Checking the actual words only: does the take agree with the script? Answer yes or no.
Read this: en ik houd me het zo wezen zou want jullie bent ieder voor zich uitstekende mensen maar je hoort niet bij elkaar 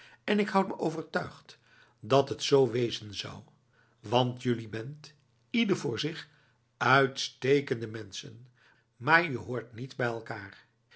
no